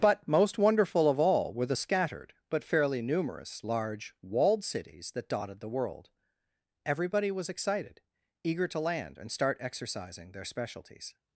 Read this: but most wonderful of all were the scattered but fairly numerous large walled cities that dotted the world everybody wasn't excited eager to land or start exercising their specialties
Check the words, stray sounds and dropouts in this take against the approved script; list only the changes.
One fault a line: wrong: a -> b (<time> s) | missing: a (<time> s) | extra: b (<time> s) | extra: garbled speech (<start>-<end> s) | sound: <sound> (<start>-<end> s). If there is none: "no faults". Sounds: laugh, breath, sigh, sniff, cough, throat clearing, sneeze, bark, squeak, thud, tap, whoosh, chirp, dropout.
wrong: wasn't -> was (7.3 s)
wrong: or -> and (9.2 s)